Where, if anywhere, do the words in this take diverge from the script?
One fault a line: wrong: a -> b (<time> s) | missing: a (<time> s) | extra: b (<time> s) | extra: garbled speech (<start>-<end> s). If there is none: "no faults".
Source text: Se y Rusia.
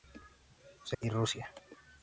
no faults